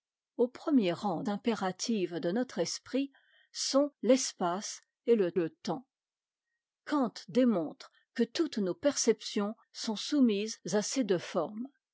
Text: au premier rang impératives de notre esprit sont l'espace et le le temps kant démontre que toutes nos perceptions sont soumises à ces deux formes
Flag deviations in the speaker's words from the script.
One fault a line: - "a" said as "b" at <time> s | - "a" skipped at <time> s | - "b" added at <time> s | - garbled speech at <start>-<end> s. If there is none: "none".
none